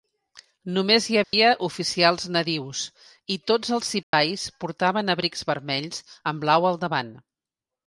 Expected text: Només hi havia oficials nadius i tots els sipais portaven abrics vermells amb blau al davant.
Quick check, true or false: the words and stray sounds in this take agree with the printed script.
false